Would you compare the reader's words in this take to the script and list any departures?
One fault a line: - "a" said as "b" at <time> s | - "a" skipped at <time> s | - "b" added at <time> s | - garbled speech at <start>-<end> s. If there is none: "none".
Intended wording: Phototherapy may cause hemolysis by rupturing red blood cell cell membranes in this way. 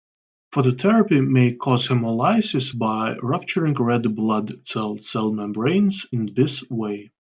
none